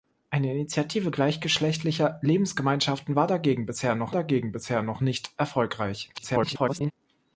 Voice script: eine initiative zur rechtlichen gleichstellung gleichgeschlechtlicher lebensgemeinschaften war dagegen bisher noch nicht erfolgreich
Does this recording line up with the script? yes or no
no